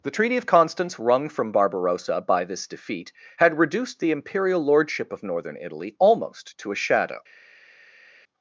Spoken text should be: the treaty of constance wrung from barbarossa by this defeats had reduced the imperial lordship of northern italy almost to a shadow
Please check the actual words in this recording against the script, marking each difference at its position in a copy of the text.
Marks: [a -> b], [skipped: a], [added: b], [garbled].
the treaty of constance wrung from barbarossa by this [defeats -> defeat] had reduced the imperial lordship of northern italy almost to a shadow